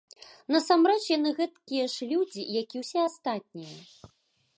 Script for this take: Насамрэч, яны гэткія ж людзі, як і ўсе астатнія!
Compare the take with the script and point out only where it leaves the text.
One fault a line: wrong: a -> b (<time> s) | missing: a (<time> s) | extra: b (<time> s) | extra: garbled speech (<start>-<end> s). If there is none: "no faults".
no faults